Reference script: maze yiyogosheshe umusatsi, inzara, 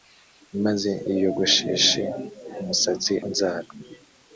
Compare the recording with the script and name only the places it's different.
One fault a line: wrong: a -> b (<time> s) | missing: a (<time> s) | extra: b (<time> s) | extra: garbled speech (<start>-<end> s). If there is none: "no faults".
no faults